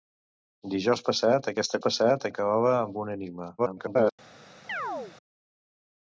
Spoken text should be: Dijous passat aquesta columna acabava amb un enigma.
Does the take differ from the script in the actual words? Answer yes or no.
yes